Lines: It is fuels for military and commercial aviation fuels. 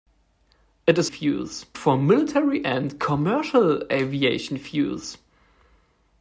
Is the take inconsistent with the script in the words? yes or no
no